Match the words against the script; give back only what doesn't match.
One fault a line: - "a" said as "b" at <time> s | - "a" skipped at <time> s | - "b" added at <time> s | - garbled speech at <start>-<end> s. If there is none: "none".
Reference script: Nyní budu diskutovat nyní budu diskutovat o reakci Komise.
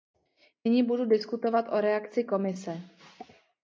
- "nyní budu diskutovat" skipped at 1.6 s